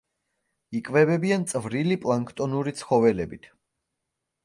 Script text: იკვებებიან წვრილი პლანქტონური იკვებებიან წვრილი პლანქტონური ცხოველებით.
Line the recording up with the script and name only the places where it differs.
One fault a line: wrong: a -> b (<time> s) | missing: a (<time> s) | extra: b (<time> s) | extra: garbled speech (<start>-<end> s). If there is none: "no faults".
missing: იკვებებიან წვრილი პლანქტონური (2.8 s)